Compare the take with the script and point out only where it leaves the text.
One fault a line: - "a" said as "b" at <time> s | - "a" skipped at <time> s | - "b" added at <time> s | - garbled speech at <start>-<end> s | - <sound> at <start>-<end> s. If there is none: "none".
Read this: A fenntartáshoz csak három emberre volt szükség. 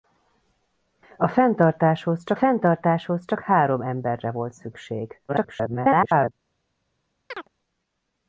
- "fenntartáshoz csak" added at 2.3 s
- garbled speech at 5.3-6.3 s
- chirp at 7.3-7.5 s